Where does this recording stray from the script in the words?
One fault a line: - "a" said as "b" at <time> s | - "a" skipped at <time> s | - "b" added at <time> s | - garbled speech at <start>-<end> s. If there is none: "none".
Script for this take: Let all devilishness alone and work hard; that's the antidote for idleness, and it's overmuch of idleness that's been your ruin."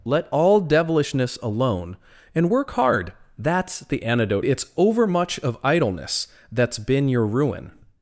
- "for idleness and" skipped at 4.4 s